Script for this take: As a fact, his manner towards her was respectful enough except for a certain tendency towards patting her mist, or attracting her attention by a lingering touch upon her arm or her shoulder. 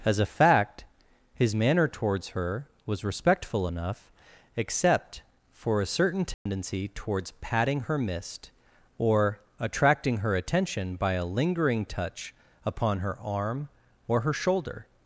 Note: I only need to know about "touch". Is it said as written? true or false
true